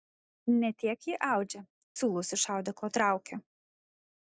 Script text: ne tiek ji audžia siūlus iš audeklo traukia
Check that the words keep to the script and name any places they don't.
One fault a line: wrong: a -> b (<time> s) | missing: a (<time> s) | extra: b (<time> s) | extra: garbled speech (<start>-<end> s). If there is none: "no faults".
no faults